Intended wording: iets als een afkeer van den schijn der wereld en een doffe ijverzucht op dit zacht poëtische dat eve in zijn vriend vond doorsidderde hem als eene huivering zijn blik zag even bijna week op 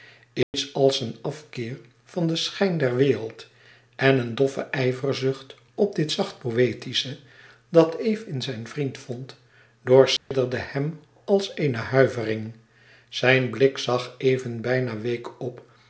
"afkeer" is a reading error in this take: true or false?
false